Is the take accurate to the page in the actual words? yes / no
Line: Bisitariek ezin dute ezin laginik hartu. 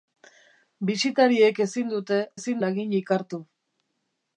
yes